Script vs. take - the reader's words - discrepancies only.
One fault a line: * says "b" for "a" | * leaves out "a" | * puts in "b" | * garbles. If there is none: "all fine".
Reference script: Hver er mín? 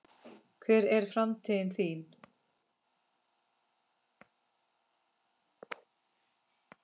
* puts in "framtíð"